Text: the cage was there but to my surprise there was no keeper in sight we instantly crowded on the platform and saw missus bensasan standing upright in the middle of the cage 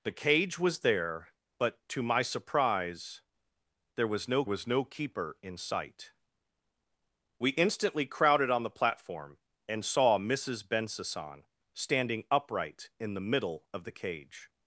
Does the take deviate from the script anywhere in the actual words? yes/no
yes